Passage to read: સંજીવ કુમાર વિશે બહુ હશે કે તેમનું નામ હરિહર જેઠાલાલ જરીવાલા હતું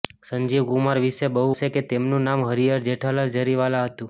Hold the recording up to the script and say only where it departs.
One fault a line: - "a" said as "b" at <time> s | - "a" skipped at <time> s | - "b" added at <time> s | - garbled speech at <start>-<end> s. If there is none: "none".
none